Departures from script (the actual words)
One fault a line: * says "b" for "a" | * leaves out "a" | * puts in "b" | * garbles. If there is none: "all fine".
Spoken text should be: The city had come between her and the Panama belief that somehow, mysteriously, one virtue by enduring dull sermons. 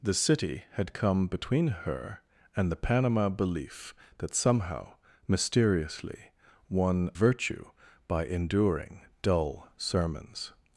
all fine